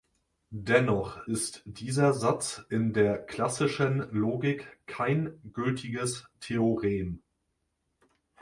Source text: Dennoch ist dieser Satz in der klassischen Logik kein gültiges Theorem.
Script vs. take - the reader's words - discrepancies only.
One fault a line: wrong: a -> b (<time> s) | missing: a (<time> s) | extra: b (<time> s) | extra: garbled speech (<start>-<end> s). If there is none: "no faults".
no faults